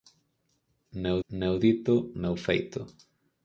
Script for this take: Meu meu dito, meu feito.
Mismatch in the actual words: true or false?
false